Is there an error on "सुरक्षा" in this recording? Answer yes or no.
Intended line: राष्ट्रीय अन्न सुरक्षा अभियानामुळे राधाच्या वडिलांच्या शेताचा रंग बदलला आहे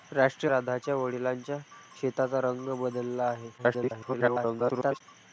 yes